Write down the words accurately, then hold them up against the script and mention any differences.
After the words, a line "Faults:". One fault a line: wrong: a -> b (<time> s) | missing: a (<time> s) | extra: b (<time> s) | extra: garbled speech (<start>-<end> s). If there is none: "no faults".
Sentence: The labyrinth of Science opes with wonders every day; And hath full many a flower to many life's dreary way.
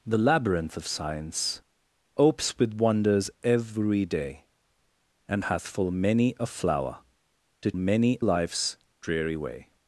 The labyrinth of Science opes with wonders every day; And hath full many a flower to many life's dreary way.
Faults:
no faults